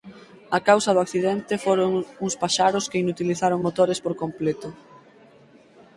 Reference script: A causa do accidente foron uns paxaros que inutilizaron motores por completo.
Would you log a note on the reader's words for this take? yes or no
no